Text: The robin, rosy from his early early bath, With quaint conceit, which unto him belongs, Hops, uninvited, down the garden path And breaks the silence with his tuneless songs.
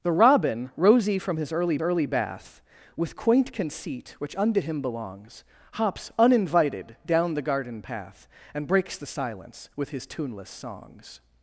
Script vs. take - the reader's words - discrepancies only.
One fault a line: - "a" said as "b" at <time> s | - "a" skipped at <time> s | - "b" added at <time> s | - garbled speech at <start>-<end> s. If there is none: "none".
none